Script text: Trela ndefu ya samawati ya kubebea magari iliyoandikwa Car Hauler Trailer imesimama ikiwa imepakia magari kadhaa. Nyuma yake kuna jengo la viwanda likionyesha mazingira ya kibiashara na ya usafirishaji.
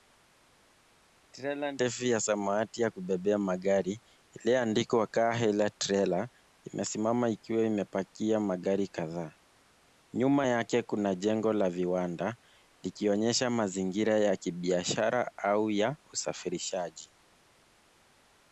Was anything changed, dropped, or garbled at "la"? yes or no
no